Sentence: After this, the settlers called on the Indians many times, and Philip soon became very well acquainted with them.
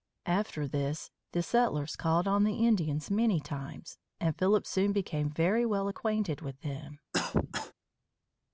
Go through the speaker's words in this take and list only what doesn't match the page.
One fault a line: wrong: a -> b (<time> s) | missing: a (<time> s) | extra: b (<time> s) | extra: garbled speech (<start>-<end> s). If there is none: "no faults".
no faults